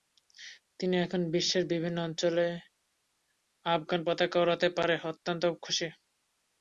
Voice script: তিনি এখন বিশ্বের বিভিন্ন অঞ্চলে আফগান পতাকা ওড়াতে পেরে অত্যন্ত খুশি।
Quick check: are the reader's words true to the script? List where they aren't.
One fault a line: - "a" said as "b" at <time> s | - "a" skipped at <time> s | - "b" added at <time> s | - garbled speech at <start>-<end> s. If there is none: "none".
none